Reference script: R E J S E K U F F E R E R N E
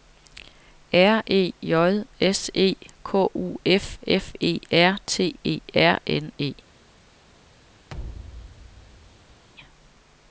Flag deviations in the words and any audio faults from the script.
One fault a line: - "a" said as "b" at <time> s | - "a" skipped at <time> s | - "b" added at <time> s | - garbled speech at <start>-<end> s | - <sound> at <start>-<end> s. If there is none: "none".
- "T" added at 5.1 s
- thud at 7.9-9.4 s